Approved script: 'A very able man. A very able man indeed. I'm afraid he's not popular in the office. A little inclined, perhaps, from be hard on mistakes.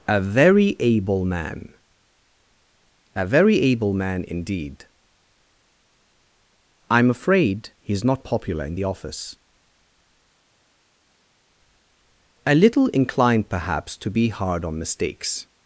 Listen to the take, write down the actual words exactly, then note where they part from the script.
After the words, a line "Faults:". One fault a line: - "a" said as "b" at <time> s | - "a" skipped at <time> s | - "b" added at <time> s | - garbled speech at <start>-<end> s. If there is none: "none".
'A very able man. A very able man indeed. I'm afraid he's not popular in the office. A little inclined, perhaps, to be hard on mistakes.
Faults:
- "from" said as "to" at 14.0 s